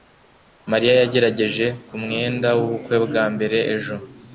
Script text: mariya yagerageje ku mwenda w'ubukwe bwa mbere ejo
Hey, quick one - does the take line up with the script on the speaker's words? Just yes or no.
yes